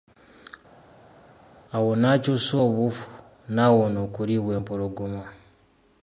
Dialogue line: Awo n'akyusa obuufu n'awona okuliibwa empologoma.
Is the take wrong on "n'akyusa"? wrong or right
right